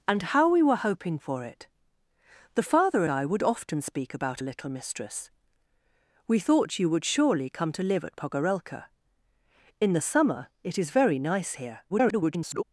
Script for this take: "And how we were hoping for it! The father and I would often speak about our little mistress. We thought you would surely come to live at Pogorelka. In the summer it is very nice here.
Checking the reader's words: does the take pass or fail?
fail